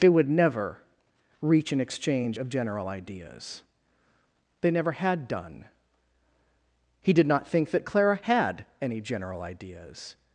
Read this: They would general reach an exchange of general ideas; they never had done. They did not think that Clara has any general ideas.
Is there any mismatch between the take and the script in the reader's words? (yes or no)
yes